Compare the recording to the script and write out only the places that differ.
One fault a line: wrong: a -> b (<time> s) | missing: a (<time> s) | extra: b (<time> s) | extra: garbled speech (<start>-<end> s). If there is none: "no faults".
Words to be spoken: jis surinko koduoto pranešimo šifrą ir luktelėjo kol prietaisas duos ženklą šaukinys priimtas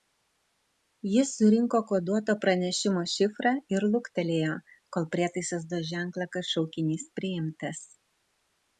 extra: kad (6.4 s)